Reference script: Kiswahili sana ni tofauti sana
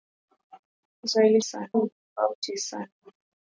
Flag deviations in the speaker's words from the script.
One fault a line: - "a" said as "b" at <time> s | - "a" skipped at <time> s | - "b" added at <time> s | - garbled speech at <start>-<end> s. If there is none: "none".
none